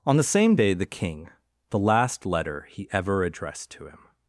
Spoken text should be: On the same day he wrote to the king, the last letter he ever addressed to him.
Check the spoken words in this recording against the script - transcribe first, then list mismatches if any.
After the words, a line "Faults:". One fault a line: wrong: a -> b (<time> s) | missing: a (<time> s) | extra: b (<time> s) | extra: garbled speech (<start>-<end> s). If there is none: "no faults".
On the same day the king, the last letter he ever addressed to him.
Faults:
missing: he wrote to (0.7 s)